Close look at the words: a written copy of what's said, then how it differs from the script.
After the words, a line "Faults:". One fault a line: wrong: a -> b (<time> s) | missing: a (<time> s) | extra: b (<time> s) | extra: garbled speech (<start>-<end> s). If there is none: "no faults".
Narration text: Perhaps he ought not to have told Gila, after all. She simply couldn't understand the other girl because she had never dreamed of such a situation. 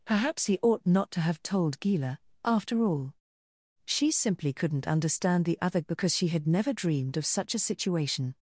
Perhaps he ought not to have told Gila, after all. She simply couldn't understand the other because she had never dreamed of such a situation.
Faults:
missing: girl (5.8 s)